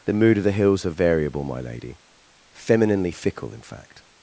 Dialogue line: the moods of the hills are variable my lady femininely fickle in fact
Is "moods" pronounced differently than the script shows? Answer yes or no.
yes